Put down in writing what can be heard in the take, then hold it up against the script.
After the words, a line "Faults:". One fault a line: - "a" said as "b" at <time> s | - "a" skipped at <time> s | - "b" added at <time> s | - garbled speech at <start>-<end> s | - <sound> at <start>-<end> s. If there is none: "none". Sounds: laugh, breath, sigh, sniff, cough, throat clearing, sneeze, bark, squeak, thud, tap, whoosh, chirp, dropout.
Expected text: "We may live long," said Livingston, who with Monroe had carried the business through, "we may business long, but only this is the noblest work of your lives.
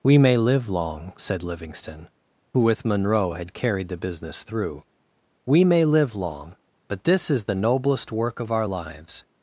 "We may live long," said Livingston, who with Monroe had carried the business through, "we may live long, but this is the noblest work of our lives.
Faults:
- "business" said as "live" at 5.8 s
- "only" skipped at 7.0 s
- "your" said as "our" at 8.5 s